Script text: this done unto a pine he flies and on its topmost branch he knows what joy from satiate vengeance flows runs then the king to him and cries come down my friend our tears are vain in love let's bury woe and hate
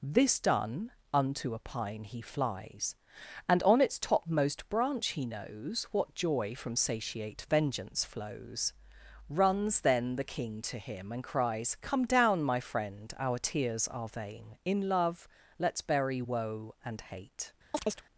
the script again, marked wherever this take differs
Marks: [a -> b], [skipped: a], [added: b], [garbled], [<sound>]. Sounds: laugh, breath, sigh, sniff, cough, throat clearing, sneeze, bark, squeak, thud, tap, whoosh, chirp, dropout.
this done unto a pine he flies and on its topmost branch he knows what joy from satiate vengeance flows runs then the king to him and cries come down my friend our tears are vain in love let's bury woe and hate [chirp]